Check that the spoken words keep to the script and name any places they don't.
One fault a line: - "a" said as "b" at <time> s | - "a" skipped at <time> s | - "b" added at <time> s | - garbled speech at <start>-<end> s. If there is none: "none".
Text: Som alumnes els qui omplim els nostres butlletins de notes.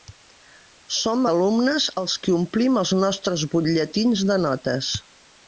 none